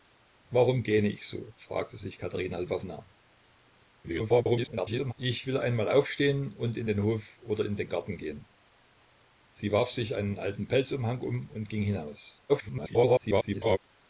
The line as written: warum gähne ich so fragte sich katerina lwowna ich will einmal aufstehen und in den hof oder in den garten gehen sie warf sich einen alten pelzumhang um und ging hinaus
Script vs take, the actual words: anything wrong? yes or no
yes